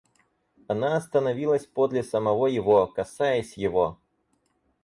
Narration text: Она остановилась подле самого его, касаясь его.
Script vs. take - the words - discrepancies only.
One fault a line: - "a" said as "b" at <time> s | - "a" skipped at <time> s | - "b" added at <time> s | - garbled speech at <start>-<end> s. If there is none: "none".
none